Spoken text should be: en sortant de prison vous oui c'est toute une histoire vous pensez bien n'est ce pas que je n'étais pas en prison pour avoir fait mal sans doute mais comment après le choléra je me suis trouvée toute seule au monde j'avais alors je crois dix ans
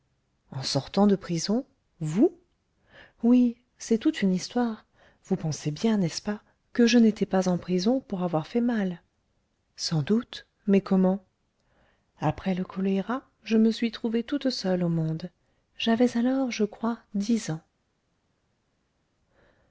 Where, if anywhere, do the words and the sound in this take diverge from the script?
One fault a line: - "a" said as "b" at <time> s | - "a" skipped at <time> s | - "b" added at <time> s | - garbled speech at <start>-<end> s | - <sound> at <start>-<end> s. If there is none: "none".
none